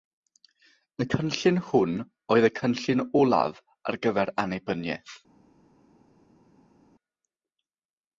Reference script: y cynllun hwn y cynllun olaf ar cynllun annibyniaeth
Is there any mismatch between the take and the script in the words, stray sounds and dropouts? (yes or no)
yes